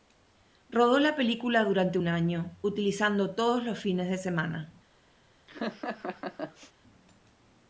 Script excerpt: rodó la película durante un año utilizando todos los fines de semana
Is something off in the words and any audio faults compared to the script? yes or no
yes